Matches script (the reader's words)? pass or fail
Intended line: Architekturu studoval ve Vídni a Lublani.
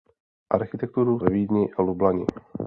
fail